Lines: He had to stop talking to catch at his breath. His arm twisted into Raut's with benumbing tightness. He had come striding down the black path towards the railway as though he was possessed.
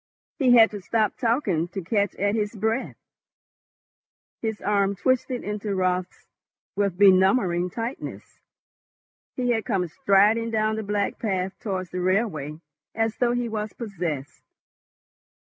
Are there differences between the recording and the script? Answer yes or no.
no